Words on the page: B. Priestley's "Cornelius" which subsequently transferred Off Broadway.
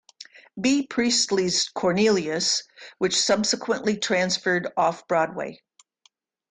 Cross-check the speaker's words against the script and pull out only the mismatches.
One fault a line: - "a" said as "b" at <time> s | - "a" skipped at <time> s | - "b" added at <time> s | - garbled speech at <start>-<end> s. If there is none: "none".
none